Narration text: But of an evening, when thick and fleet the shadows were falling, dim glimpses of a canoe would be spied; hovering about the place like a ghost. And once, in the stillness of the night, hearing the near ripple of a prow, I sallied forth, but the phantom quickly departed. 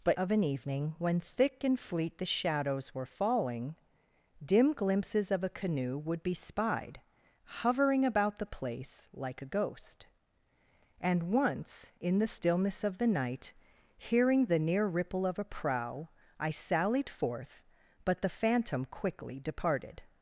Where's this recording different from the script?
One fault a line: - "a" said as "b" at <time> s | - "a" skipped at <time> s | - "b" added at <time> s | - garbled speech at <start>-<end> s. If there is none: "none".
none